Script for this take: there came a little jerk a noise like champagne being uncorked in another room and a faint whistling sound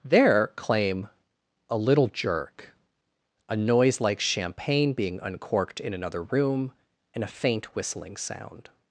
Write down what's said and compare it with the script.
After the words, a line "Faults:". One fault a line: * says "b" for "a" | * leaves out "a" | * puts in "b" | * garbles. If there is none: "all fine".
there claim a little jerk a noise like champagne being uncorked in another room and a faint whistling sound
Faults:
* says "claim" for "came"